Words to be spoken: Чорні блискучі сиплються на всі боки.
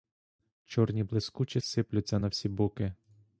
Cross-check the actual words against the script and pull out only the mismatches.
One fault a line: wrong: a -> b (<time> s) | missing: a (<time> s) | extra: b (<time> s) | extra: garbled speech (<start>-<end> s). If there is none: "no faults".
no faults